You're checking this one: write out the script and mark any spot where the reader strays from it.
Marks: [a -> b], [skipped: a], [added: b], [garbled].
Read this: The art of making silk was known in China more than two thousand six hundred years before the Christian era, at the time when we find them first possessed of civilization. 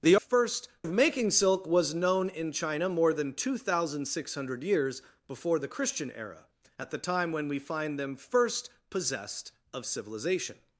The [art -> first] of making silk was known in China more than two thousand six hundred years before the Christian era, at the time when we find them first possessed of civilization.